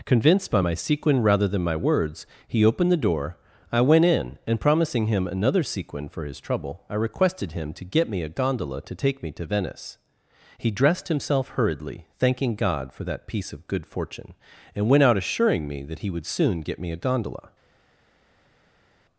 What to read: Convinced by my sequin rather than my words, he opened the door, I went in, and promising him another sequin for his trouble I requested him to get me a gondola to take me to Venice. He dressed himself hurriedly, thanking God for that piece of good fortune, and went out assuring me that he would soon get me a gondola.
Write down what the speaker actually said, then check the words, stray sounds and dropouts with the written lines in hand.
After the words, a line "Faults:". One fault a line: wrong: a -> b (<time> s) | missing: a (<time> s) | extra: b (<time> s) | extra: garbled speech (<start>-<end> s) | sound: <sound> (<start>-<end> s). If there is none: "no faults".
Convinced by my sequin rather than my words, he opened the door, I went in, and promising him another sequin for his trouble I requested him to get me a gondola to take me to Venice. He dressed himself hurriedly, thanking God for that piece of good fortune, and went out assuring me that he would soon get me a gondola.
Faults:
no faults